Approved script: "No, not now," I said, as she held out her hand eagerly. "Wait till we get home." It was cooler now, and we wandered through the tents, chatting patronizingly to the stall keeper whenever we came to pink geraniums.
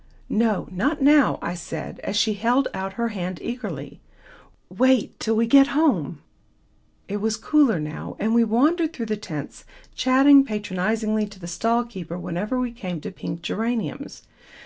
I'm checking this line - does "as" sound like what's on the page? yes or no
yes